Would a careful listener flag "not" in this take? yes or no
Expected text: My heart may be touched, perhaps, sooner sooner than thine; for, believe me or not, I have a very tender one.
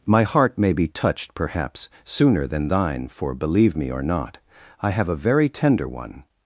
no